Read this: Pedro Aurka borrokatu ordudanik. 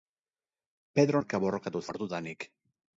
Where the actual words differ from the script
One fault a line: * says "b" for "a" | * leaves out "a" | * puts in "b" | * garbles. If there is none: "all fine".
all fine